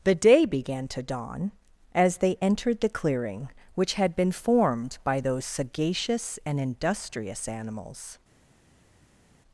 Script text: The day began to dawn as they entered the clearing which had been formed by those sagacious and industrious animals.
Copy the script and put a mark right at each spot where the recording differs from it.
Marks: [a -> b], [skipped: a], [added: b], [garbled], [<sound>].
The day began to dawn as they entered the clearing which had been formed by those sagacious and industrious animals.